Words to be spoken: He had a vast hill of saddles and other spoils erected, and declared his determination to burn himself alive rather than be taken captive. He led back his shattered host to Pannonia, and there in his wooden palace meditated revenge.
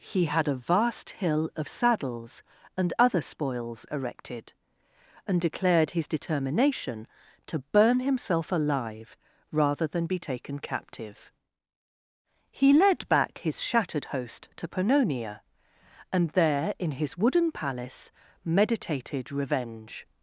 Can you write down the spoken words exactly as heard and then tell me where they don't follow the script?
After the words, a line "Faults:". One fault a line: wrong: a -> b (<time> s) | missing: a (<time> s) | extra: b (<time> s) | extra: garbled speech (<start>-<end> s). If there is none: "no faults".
He had a vast hill of saddles and other spoils erected, and declared his determination to burn himself alive rather than be taken captive. He led back his shattered host to Pannonia, and there in his wooden palace meditated revenge.
Faults:
no faults